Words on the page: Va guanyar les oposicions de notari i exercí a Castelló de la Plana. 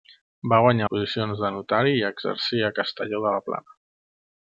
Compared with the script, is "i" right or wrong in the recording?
right